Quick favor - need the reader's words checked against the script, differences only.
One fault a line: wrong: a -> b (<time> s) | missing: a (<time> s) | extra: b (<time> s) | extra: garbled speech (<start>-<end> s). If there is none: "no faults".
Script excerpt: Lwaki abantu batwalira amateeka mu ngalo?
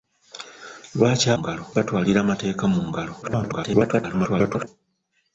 wrong: abantu -> ngalo (1.4 s)
extra: garbled speech (3.2-4.7 s)